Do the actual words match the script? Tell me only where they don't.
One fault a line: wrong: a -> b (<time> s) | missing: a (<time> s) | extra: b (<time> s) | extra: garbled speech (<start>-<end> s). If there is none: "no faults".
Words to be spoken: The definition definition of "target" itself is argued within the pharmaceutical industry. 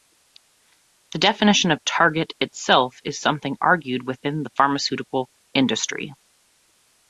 missing: definition (1.7 s)
extra: something (3.2 s)